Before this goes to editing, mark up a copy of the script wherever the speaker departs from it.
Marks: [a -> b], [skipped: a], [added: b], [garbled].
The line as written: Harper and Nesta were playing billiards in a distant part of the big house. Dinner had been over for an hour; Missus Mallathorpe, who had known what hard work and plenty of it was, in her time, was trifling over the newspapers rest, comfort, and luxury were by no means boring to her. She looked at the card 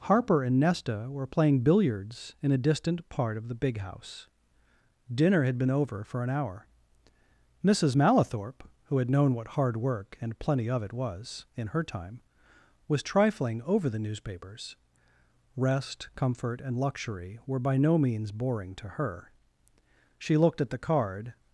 Harper and Nesta were playing billiards in a distant part of the big house. Dinner had been over for an hour; Missus Mallathorpe, who had known what hard work and plenty of it was, in her time, was trifling over the newspapers rest, comfort, and luxury were by no means boring to her. She looked at the card